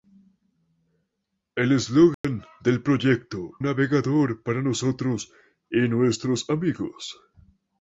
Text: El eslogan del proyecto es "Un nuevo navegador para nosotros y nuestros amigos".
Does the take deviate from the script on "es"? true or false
true